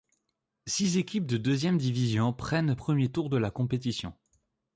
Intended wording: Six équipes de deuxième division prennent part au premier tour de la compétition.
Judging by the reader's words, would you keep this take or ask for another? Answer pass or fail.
fail